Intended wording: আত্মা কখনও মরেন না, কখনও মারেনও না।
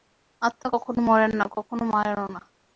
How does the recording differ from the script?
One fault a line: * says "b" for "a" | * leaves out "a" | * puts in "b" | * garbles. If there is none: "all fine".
all fine